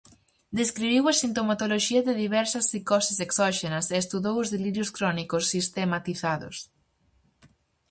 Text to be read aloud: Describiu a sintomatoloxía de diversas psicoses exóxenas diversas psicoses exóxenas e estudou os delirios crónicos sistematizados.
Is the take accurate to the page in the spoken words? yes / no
no